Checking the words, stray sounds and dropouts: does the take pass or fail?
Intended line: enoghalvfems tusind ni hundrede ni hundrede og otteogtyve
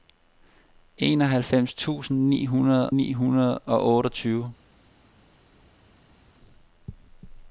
pass